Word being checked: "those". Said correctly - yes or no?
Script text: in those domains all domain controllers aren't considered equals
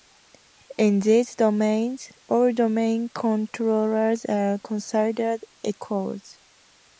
no